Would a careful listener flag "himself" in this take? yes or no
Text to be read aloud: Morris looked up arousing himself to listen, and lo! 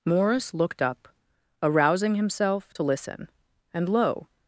no